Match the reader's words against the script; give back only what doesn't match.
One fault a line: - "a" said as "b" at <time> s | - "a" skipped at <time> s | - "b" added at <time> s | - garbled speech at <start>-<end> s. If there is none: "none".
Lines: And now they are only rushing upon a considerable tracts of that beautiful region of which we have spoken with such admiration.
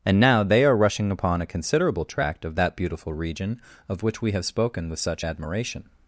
- "only" skipped at 0.8 s
- "tracts" said as "tract" at 2.0 s